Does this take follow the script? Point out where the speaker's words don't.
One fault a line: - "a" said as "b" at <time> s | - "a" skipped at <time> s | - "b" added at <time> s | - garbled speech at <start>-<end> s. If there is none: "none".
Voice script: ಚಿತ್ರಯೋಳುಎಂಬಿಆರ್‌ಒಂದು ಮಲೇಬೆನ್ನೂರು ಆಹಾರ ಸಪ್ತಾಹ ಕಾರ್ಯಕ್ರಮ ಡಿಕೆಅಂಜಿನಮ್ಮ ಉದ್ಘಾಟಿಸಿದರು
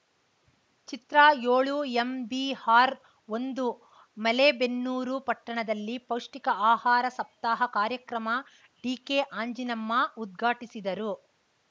- "ಪಟ್ಟಣದಲ್ಲಿ ಪೌಷ್ಟಿಕ" added at 5.2 s